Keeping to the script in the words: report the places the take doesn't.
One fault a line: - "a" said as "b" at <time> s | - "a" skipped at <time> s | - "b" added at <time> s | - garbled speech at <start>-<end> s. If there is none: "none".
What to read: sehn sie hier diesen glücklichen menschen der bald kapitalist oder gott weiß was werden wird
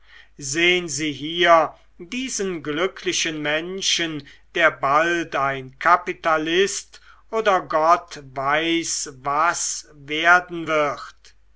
- "ein" added at 5.3 s